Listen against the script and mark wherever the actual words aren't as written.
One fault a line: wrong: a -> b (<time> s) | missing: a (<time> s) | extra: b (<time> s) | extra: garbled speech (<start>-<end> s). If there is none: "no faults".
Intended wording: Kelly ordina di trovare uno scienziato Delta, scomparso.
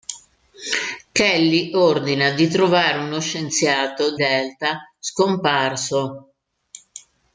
no faults